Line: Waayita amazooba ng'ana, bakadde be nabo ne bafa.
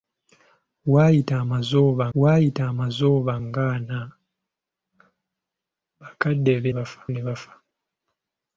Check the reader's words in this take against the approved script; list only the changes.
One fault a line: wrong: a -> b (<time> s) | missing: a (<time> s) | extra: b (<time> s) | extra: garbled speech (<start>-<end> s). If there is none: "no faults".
extra: waayita amazooba (2.2 s)
wrong: nabo -> bafa (6.8 s)